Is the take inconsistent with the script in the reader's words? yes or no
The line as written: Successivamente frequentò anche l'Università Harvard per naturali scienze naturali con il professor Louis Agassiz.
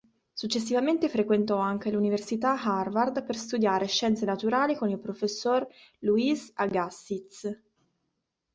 yes